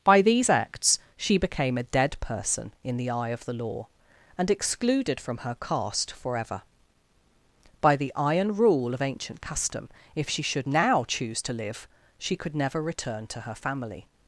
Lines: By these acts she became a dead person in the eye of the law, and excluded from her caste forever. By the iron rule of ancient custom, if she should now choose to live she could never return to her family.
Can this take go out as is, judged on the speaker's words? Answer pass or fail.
pass